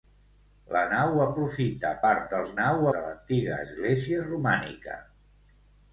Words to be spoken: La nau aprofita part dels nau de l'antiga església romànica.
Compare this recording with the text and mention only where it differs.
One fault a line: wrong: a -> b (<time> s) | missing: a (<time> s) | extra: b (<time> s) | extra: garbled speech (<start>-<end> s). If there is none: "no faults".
no faults